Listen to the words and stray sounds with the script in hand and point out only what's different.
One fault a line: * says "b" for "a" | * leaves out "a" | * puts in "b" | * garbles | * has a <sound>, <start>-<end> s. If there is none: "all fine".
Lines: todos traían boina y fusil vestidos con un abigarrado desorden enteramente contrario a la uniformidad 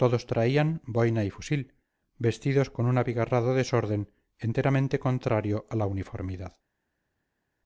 all fine